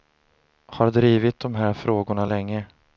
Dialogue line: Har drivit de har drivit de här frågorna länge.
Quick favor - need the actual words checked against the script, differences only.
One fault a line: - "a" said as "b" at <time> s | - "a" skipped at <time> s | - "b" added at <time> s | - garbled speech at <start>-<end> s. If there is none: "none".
- "har drivit de" skipped at 1.6 s